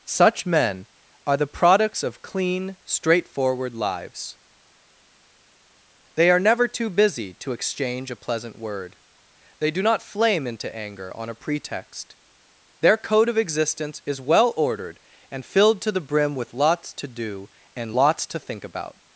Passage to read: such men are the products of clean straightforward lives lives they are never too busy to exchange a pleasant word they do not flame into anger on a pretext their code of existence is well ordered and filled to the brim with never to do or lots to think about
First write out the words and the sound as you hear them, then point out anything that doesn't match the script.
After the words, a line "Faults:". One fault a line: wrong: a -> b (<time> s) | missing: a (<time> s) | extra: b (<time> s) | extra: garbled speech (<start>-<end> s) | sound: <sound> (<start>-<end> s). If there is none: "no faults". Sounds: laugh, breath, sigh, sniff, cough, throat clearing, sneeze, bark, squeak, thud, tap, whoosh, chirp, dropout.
such men are the products of clean straightforward lives they are never too busy to exchange a pleasant word they do not flame into anger on a pretext their code of existence is well ordered and filled to the brim with lots to do and lots to think about
Faults:
missing: lives (4.4 s)
wrong: never -> lots (16.5 s)
wrong: or -> and (17.7 s)